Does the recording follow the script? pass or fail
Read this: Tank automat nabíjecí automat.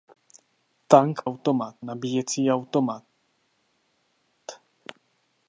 pass